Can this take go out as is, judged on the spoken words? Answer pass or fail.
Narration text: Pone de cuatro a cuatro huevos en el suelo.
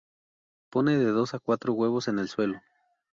fail